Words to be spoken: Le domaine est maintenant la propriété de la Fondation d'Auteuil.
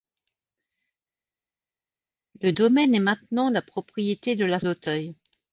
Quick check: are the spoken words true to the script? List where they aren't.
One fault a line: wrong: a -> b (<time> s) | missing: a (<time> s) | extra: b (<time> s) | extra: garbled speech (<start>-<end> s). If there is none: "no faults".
missing: Fondation (4.6 s)